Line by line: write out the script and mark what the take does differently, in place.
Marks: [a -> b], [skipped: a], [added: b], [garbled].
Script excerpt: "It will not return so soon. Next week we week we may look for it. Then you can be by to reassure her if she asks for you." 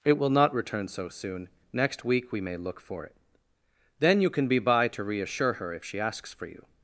"It will not return so soon. Next week we [skipped: week we] may look for it. Then you can be by to reassure her if she asks for you."